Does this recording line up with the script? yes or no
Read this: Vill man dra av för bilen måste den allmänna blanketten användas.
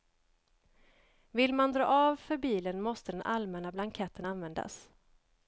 yes